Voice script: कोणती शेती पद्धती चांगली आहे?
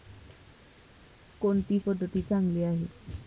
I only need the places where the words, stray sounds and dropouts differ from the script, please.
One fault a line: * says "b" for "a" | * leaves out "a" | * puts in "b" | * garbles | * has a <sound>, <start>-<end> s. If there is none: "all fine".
* leaves out "शेती"